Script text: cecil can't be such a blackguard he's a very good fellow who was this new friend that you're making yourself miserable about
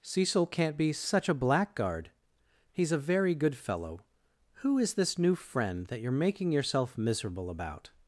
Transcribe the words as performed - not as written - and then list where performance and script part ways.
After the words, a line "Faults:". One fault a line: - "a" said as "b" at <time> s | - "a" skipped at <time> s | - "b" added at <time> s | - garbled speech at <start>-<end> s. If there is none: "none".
cecil can't be such a blackguard he's a very good fellow who is this new friend that you're making yourself miserable about
Faults:
- "was" said as "is" at 4.8 s